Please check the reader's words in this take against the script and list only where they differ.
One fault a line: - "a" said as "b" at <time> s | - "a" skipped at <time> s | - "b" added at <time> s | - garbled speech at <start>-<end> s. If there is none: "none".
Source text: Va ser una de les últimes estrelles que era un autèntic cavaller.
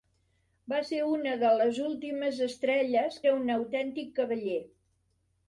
- "que" skipped at 3.2 s